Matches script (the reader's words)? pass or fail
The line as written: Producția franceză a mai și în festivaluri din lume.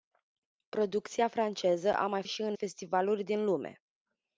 pass